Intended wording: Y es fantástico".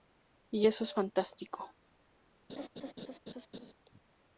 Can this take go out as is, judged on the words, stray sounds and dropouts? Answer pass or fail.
fail